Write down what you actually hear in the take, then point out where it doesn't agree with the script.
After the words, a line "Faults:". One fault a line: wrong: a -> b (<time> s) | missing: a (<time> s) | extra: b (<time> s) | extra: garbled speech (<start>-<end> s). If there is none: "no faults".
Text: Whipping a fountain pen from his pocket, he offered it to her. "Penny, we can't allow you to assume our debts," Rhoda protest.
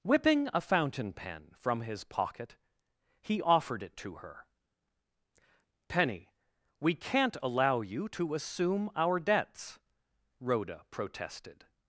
Whipping a fountain pen from his pocket, he offered it to her. "Penny, we can't allow you to assume our debts," Rhoda protested.
Faults:
wrong: protest -> protested (10.9 s)